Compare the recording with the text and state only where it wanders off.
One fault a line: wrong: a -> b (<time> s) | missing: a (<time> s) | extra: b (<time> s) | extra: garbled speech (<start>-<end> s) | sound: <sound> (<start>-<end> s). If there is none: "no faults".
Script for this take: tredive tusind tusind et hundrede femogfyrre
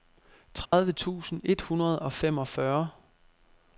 sound: dropout (0.7-0.7 s)
missing: tusind (1.4 s)
extra: og (2.0 s)